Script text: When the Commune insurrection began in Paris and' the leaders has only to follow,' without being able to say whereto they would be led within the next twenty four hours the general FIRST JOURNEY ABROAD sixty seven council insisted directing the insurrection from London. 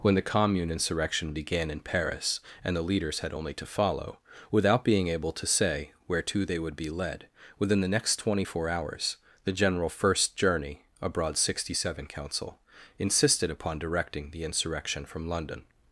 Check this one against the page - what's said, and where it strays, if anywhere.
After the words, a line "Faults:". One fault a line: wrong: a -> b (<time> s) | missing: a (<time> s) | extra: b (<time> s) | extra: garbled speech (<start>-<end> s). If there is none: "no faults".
When the Commune insurrection began in Paris and' the leaders had only to follow,' without being able to say whereto they would be led within the next twenty four hours the general FIRST JOURNEY ABROAD sixty seven council insisted upon directing the insurrection from London.
Faults:
wrong: has -> had (3.2 s)
extra: upon (13.5 s)